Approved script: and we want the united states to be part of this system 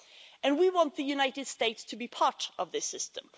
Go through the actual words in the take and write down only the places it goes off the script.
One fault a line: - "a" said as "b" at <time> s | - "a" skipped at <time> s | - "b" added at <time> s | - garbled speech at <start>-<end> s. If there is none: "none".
none